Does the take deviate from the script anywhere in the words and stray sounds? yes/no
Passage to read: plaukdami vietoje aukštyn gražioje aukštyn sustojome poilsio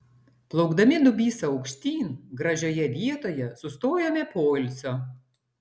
yes